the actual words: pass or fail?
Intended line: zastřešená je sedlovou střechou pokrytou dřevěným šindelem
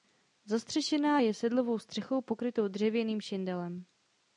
pass